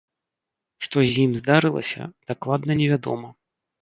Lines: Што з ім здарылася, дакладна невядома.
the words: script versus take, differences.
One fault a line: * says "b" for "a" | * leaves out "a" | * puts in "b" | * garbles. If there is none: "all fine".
all fine